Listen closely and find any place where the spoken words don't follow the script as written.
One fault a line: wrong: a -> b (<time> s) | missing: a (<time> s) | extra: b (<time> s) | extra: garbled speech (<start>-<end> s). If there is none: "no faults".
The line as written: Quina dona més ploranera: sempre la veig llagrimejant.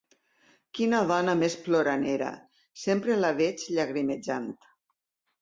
no faults